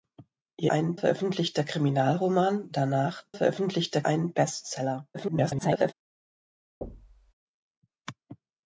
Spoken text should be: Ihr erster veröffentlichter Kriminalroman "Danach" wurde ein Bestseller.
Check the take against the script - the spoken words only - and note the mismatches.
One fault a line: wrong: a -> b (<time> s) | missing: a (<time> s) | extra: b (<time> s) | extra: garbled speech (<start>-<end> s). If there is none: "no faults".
wrong: erster -> ein (0.7 s)
wrong: wurde -> veröffentlichter (3.3 s)
extra: garbled speech (5.1-5.9 s)